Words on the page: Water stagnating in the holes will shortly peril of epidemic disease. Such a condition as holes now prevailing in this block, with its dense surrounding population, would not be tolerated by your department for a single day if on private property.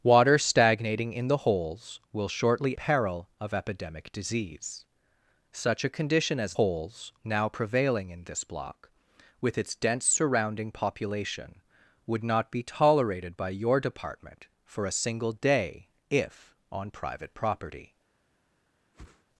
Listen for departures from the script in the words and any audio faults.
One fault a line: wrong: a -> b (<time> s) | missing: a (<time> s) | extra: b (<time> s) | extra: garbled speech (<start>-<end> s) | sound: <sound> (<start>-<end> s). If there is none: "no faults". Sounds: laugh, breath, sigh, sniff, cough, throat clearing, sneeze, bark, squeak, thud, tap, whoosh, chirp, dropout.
sound: whoosh (18.9-19.2 s)